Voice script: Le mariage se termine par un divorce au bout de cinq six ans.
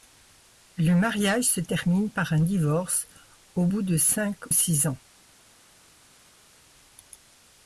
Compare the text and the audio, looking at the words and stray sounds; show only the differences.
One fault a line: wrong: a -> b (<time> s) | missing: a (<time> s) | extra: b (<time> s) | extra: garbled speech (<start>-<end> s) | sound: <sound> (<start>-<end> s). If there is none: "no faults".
no faults